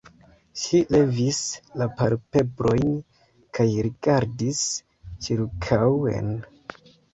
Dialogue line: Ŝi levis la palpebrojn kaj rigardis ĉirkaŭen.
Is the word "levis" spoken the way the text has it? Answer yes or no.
yes